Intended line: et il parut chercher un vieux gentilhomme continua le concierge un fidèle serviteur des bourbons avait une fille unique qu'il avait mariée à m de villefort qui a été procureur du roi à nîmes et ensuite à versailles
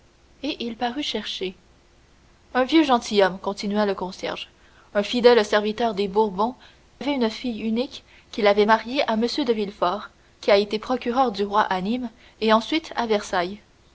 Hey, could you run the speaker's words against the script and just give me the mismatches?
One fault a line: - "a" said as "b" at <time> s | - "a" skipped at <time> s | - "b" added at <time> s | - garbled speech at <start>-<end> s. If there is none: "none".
none